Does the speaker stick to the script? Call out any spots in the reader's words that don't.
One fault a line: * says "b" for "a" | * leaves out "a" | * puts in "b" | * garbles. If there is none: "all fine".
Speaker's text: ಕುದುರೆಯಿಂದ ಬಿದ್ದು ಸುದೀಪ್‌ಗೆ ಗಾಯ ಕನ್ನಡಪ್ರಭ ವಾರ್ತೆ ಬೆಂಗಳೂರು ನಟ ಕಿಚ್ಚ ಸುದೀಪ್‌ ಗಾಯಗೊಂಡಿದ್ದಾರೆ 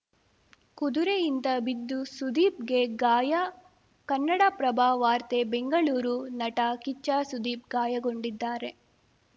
all fine